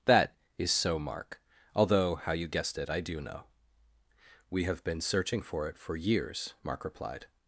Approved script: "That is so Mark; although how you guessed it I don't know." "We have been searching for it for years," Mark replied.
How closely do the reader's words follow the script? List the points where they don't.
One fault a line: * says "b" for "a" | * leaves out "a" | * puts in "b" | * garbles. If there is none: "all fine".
* says "do" for "don't"